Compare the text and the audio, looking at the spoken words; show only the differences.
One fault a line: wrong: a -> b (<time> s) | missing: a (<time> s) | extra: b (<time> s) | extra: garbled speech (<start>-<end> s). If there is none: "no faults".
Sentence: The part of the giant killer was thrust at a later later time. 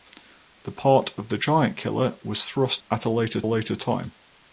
no faults